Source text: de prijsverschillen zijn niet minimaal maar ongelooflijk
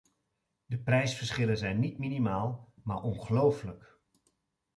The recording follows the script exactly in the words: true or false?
true